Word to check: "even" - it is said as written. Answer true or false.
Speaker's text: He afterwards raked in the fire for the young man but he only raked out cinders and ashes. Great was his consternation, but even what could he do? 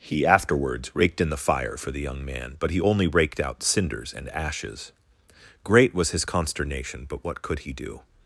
false